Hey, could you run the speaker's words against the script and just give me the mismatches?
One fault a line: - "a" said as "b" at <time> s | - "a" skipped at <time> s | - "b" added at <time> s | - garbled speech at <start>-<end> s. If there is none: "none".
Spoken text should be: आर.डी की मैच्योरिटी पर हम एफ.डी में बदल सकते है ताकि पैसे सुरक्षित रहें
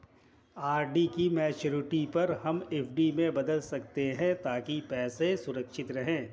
none